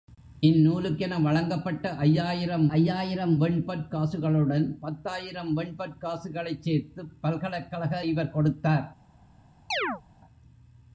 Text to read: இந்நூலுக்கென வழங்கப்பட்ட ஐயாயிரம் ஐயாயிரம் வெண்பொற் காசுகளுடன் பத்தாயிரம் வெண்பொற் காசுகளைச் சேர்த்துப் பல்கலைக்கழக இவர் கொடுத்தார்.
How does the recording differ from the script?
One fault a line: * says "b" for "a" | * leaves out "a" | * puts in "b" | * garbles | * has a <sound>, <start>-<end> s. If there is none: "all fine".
* has a chirp, 9.7-10.0 s